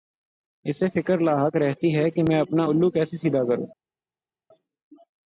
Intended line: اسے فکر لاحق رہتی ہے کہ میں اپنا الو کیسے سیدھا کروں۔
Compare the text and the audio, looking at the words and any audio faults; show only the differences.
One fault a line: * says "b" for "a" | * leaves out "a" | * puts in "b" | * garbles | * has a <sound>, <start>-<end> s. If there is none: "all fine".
all fine